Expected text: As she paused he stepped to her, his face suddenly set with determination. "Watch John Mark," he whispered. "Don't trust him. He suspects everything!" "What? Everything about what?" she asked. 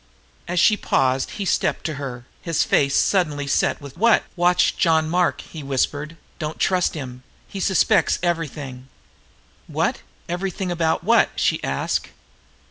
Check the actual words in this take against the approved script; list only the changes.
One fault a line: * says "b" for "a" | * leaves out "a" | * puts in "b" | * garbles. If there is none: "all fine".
* says "what" for "determination"